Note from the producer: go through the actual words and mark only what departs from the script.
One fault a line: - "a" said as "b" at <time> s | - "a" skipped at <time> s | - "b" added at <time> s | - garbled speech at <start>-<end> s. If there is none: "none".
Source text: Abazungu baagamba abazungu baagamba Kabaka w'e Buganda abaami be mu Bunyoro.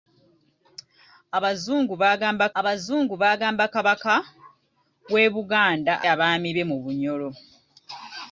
none